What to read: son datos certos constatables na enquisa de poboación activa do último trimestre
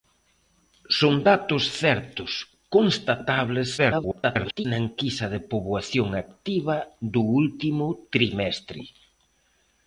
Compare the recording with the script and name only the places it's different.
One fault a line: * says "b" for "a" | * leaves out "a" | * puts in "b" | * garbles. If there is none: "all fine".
* garbles